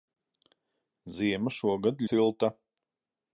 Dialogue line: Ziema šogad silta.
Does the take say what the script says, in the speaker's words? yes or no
yes